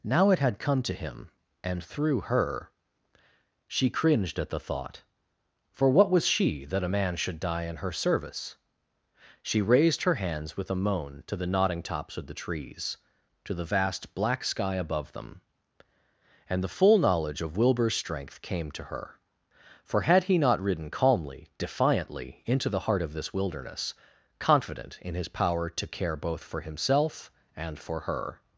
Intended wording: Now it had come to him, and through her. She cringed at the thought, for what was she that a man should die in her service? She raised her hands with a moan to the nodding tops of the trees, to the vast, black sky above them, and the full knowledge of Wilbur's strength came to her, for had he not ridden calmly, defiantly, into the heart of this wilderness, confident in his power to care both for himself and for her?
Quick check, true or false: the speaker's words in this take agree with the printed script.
true